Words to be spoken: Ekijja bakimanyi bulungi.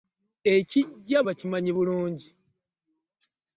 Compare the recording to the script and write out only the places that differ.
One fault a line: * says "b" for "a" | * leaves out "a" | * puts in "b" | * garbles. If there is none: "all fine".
all fine